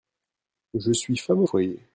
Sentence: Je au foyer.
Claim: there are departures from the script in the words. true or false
true